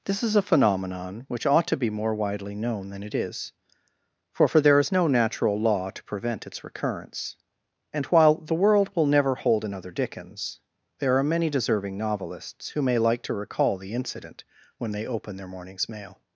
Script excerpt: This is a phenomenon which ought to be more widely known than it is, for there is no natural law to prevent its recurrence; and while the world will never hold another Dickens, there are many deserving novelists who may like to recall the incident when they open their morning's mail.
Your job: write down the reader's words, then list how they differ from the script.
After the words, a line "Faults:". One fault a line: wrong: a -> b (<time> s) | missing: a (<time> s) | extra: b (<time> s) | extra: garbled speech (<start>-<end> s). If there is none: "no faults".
This is a phenomenon which ought to be more widely known than it is, for for there is no natural law to prevent its recurrence; and while the world will never hold another Dickens, there are many deserving novelists who may like to recall the incident when they open their morning's mail.
Faults:
extra: for (4.5 s)